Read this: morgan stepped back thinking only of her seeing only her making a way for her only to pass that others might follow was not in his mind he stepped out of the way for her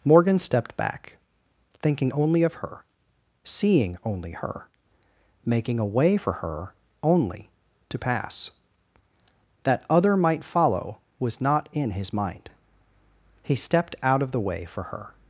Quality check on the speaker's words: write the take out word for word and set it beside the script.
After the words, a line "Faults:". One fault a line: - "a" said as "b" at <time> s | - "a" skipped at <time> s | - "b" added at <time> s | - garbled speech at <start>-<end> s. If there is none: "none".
morgan stepped back thinking only of her seeing only her making a way for her only to pass that other might follow was not in his mind he stepped out of the way for her
Faults:
- "others" said as "other" at 9.9 s